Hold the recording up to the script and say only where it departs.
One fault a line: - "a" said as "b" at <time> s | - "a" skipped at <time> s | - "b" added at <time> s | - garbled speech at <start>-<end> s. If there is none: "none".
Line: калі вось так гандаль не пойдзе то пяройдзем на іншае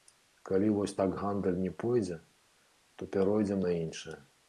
none